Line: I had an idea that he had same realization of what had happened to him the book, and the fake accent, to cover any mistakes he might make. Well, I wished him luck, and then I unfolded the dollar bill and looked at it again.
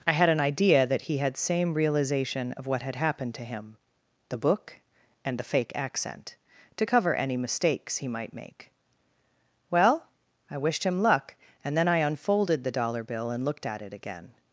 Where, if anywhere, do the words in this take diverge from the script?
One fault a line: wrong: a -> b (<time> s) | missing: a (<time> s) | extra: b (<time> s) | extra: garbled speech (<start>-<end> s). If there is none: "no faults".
no faults